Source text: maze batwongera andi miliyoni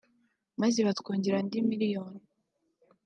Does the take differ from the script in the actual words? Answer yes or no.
no